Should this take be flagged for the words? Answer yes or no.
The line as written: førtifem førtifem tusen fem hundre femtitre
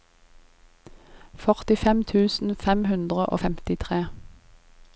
yes